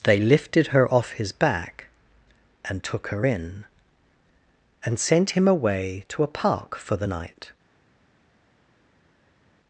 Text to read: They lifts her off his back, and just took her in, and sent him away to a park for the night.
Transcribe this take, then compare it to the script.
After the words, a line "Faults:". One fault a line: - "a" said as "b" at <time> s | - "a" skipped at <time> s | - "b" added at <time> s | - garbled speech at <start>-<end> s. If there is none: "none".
They lifted her off his back, and took her in, and sent him away to a park for the night.
Faults:
- "lifts" said as "lifted" at 0.2 s
- "just" skipped at 2.8 s